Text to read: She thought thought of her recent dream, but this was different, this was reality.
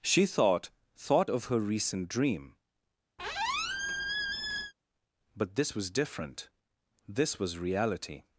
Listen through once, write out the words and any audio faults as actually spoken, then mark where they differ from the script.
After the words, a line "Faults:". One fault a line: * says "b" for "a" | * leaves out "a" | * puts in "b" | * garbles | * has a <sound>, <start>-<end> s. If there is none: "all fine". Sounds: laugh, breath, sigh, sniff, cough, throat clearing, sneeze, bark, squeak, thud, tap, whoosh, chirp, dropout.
She thought thought of her recent dream, but this was different, this was reality.
Faults:
* has a squeak, 3.2-4.7 s